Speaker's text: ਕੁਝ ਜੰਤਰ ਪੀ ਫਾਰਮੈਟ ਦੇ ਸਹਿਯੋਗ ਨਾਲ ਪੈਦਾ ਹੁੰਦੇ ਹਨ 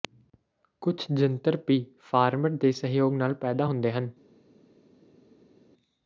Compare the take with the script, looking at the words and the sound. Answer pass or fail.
pass